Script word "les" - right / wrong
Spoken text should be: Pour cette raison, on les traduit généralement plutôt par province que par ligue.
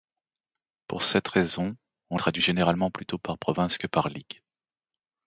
wrong